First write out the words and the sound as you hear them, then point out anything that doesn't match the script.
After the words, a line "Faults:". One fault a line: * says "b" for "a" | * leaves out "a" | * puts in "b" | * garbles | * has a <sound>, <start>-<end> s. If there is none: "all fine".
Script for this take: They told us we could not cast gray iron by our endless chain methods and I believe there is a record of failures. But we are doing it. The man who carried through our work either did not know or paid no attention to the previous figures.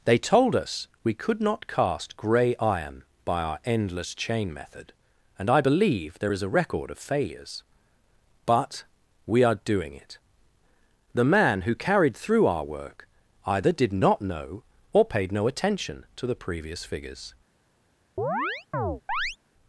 They told us we could not cast gray iron by our endless chain method and I believe there is a record of failures. But we are doing it. The man who carried through our work either did not know or paid no attention to the previous figures.
Faults:
* says "method" for "methods"
* has a chirp, 18.2-19.4 s